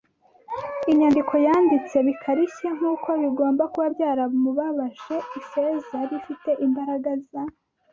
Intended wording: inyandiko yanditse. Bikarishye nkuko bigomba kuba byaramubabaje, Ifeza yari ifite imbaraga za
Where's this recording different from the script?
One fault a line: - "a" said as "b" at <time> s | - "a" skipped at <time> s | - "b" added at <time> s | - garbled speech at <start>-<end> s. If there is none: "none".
none